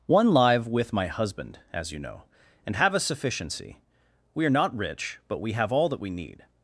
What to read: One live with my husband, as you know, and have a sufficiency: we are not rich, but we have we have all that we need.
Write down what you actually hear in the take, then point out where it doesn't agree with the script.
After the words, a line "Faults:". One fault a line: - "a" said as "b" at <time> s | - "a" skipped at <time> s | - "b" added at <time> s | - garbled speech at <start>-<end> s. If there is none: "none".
One live with my husband, as you know, and have a sufficiency: we are not rich, but we have all that we need.
Faults:
- "we have" skipped at 5.7 s